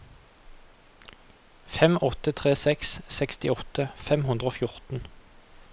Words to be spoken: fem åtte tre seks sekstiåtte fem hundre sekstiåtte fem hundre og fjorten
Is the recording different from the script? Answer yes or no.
yes